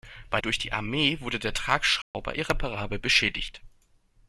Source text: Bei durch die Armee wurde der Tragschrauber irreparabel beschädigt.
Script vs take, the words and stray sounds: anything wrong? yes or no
yes